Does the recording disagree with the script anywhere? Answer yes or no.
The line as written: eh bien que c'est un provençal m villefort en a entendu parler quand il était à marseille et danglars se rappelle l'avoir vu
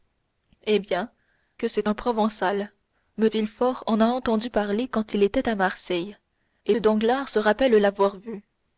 no